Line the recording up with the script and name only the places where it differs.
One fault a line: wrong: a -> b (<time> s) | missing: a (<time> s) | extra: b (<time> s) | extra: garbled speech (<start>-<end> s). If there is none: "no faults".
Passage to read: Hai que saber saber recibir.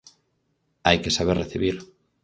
missing: saber (1.4 s)